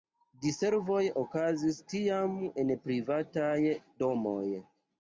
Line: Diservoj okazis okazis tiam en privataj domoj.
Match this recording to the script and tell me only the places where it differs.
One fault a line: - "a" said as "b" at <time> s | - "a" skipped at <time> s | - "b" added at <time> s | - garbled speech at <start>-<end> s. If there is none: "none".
- "okazis" skipped at 1.8 s